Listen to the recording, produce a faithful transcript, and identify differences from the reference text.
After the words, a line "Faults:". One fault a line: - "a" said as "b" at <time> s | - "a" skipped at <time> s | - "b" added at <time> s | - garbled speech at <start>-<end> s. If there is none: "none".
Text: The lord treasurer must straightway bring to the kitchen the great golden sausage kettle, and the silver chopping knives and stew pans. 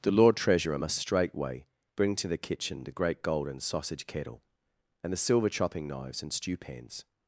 The lord treasurer must straightway bring to the kitchen the great golden sausage kettle, and the silver chopping knives and stew pans.
Faults:
none